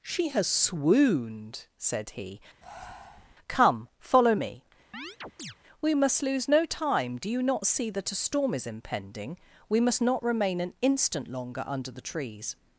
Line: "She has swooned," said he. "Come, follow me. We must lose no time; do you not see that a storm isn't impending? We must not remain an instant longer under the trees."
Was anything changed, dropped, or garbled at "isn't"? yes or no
yes